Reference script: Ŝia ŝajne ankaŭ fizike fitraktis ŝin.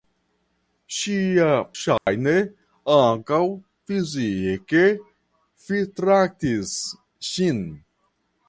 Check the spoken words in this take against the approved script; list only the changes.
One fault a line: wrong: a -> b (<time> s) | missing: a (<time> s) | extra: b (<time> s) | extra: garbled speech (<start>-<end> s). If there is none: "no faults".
no faults